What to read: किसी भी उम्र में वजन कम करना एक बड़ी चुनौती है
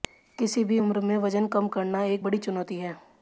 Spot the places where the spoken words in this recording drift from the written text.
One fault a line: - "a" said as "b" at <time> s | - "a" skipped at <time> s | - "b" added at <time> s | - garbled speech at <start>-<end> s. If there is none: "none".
none